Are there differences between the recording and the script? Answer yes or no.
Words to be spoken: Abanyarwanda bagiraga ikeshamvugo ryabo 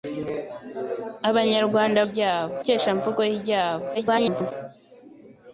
yes